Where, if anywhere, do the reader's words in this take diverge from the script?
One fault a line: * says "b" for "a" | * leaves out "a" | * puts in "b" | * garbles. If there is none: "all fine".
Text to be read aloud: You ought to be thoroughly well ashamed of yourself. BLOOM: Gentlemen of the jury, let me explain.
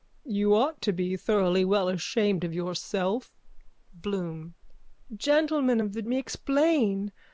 * leaves out "jury let"